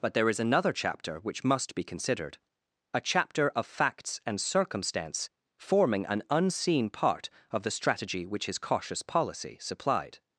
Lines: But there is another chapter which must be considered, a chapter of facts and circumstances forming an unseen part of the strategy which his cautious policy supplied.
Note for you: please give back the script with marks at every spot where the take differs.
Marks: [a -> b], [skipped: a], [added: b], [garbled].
But there is another chapter which must be considered, a chapter of facts and [circumstances -> circumstance] forming an unseen part of the strategy which his cautious policy supplied.